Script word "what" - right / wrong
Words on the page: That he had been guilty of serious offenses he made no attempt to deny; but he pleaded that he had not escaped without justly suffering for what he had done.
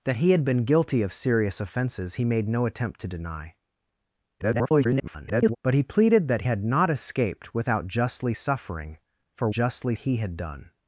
wrong